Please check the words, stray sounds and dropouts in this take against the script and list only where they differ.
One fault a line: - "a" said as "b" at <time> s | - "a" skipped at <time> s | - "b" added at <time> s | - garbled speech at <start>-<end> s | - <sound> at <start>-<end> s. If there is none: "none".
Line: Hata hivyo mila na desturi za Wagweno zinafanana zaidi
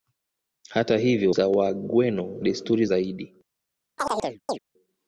- "mila na desturi" skipped at 1.4 s
- "zinafanana" said as "desturi" at 2.4 s
- chirp at 4.0-4.6 s